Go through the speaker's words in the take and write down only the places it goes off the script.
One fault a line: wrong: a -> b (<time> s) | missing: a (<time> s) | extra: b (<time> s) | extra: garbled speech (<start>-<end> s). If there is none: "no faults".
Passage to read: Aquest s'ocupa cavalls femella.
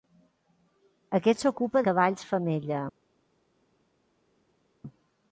no faults